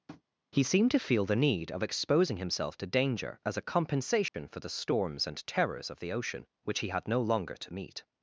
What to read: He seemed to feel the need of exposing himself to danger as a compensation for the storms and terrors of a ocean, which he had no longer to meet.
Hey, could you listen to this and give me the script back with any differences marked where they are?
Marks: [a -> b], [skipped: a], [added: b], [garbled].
He seemed to feel the need of exposing himself to danger as a compensation for the storms and terrors of [a -> the] ocean, which he had no longer to meet.